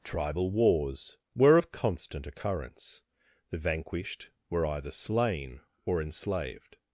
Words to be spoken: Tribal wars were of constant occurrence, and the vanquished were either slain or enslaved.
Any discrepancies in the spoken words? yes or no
yes